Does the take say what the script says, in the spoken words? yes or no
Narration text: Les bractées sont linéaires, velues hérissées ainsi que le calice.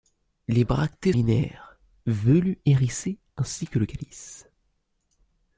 no